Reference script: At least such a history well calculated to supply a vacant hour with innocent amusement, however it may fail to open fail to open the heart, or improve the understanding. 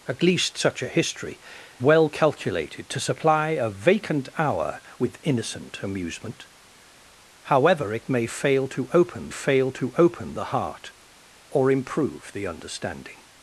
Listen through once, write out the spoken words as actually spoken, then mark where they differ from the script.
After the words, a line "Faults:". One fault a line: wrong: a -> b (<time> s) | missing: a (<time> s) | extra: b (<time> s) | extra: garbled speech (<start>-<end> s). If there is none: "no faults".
At least such a history well calculated to supply a vacant hour with innocent amusement, however it may fail to open fail to open the heart, or improve the understanding.
Faults:
no faults